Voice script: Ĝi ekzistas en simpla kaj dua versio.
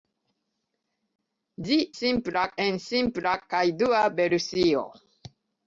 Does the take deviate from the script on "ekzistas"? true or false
true